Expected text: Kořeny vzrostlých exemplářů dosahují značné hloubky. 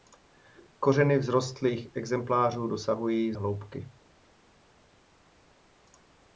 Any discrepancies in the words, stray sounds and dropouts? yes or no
yes